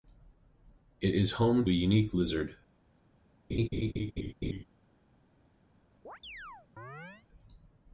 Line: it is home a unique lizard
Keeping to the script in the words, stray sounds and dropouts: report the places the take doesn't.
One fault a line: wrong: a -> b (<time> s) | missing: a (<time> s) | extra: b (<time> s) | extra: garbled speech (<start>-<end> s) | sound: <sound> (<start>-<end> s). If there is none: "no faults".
sound: laugh (3.5-4.6 s)
sound: chirp (6.0-7.3 s)